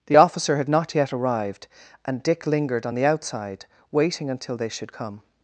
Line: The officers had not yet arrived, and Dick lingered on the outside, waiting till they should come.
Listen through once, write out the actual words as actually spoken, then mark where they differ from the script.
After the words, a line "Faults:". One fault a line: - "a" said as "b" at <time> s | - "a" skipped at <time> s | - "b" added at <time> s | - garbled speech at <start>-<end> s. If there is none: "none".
The officer had not yet arrived, and Dick lingered on the outside, waiting until they should come.
Faults:
- "officers" said as "officer" at 0.1 s
- "till" said as "until" at 4.3 s